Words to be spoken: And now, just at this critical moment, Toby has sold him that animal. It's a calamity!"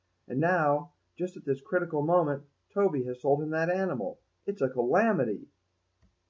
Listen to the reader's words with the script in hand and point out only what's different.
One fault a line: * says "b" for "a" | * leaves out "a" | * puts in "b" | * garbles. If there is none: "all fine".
all fine